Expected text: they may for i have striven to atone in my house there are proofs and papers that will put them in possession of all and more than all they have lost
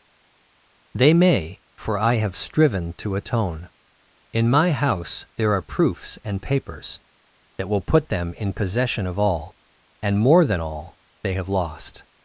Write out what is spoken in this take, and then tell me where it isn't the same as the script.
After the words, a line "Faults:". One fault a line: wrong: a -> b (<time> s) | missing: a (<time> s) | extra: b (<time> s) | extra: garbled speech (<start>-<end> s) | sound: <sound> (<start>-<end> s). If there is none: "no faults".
they may for i have striven to atone in my house there are proofs and papers that will put them in possession of all and more than all they have lost
Faults:
no faults